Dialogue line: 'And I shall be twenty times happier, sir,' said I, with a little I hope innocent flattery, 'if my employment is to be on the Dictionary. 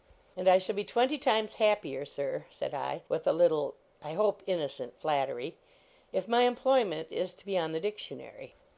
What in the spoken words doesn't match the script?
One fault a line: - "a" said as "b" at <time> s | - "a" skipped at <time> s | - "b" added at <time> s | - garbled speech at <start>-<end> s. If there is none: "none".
none